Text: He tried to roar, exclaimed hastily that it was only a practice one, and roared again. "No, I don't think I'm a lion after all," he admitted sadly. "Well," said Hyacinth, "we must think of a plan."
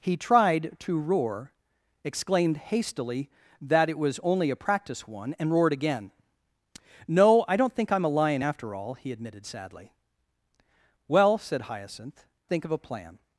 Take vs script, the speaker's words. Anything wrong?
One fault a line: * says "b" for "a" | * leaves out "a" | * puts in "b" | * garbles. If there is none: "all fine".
* leaves out "we must"